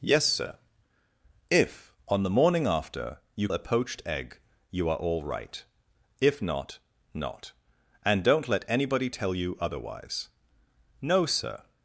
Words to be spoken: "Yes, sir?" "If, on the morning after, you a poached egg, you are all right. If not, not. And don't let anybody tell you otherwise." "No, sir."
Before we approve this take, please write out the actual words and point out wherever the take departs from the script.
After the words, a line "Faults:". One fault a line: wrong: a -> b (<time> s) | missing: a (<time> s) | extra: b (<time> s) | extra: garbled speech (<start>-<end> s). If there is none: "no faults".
"Yes, sir?" "If, on the morning after, you a poached egg, you are all right. If not, not. And don't let anybody tell you otherwise." "No, sir."
Faults:
no faults